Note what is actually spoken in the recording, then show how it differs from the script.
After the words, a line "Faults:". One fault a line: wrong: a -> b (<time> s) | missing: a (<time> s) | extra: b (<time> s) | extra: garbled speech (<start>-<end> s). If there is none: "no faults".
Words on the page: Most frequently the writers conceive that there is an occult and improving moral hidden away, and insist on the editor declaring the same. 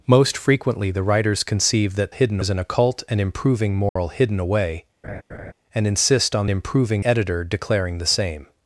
Most frequently the writers conceive that hidden is an occult and improving moral hidden away, and insist on improving editor declaring the same.
Faults:
wrong: there -> hidden (2.1 s)
wrong: the -> improving (6.5 s)